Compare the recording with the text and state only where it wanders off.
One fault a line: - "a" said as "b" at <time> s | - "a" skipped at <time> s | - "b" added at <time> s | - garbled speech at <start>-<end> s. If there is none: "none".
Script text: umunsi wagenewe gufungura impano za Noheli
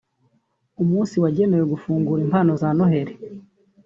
none